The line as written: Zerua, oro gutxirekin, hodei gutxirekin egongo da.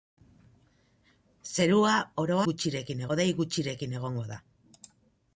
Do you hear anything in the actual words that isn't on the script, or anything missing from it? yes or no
no